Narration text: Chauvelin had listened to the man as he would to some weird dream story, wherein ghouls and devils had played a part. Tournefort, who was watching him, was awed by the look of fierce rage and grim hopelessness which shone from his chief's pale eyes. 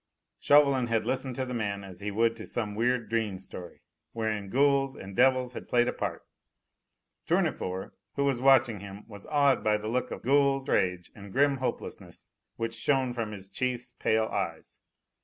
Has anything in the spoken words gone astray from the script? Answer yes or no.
yes